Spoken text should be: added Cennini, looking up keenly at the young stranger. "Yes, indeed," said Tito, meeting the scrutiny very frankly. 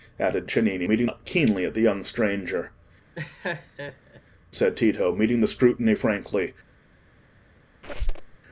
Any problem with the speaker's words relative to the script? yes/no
yes